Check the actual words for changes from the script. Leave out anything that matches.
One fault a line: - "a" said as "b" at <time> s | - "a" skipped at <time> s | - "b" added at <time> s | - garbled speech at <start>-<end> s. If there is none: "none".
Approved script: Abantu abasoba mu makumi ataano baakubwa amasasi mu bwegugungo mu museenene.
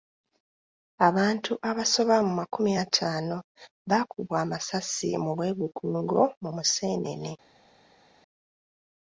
none